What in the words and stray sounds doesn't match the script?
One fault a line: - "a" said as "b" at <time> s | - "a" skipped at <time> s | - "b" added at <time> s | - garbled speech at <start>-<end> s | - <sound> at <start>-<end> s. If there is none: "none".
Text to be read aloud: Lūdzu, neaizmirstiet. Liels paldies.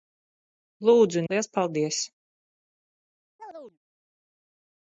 - "neaizmirstiet" skipped at 1.2 s
- chirp at 3.4-3.8 s